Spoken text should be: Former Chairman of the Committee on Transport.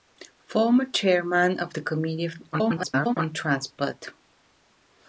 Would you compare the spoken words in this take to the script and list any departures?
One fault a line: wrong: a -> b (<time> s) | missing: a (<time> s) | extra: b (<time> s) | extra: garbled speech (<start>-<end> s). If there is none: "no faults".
extra: garbled speech (2.5-3.2 s)